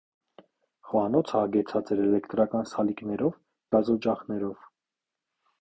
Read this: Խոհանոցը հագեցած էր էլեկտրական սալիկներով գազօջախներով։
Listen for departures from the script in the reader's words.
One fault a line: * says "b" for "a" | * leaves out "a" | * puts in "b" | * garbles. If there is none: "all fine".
all fine